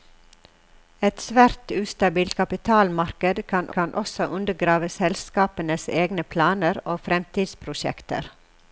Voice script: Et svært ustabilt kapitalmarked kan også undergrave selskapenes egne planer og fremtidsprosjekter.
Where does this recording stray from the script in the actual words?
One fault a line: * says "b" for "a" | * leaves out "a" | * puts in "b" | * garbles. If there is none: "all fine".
* puts in "kan"